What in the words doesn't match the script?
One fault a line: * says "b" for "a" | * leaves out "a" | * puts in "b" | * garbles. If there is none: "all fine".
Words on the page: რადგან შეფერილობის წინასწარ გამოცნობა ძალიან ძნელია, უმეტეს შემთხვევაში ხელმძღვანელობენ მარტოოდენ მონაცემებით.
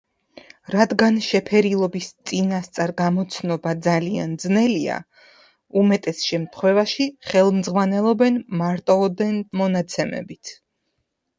all fine